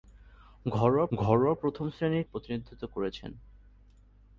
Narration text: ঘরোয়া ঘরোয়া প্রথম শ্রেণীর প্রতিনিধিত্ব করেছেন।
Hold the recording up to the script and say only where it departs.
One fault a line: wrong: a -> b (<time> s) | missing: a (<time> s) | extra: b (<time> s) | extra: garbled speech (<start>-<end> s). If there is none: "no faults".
no faults